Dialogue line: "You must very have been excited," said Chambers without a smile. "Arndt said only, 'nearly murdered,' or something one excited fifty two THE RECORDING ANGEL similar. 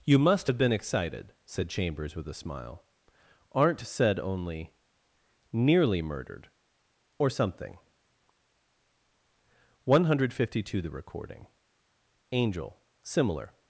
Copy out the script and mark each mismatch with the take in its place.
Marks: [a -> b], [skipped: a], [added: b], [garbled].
"You must [skipped: very] have been excited," said Chambers [without -> with] a smile. "Arndt said only, 'nearly murdered,' or something one [excited -> hundred] fifty two THE RECORDING ANGEL similar.